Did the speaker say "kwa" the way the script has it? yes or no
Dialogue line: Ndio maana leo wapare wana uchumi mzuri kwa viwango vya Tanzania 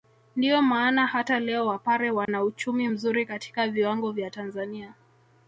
no